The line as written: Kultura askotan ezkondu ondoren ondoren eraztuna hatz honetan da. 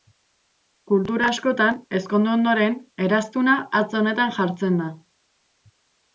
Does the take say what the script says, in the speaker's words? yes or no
no